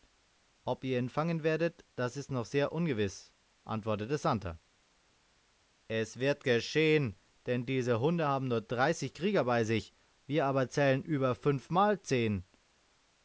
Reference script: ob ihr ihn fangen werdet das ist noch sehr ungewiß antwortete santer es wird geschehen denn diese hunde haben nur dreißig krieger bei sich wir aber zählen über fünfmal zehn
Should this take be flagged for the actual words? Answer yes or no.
no